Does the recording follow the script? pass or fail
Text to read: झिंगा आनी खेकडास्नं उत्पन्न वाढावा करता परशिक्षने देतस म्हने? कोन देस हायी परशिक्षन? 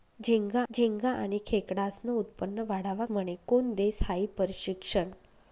fail